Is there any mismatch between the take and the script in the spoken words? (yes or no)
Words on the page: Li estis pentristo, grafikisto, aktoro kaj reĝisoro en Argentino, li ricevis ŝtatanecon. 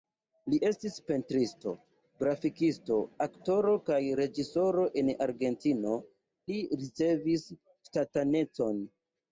no